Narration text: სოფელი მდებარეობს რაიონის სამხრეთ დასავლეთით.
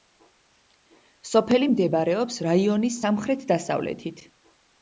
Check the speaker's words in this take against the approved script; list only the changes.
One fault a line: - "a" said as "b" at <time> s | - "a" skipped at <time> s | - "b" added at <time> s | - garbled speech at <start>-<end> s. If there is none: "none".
none